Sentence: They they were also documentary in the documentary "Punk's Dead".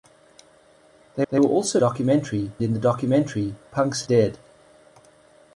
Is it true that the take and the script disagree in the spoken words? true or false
false